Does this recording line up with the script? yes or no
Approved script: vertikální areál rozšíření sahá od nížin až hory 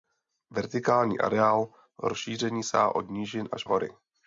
yes